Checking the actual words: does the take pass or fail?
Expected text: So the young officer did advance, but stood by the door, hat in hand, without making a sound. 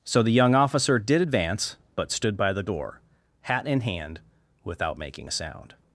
pass